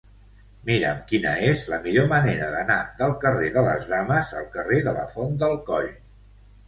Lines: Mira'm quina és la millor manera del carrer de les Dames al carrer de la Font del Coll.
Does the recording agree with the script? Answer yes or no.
no